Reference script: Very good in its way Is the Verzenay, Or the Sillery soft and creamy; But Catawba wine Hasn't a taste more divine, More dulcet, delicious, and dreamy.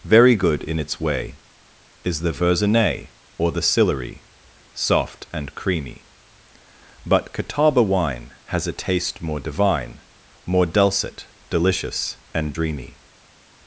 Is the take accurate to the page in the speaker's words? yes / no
no